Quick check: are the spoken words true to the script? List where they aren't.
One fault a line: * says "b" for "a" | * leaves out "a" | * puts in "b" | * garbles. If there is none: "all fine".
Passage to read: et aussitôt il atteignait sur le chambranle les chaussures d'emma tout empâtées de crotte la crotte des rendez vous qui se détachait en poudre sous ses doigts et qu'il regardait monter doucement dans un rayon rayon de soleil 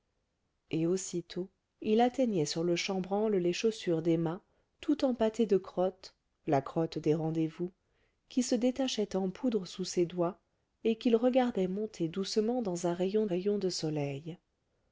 all fine